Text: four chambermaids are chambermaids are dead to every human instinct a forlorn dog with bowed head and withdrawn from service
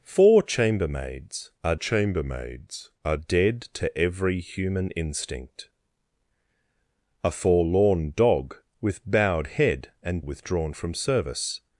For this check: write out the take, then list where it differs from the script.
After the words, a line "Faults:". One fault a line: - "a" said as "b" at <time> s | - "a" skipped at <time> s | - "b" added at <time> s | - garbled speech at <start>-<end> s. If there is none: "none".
four chambermaids are chambermaids are dead to every human instinct a forlorn dog with bowed head and withdrawn from service
Faults:
none